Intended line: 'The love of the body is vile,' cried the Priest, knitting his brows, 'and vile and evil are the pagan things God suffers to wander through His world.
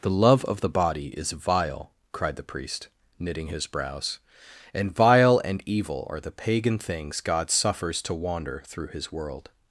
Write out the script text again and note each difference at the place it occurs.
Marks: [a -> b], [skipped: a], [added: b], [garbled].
'The love of the body is vile,' cried the Priest, knitting his brows, 'and vile and evil are the pagan things God suffers to wander through His world.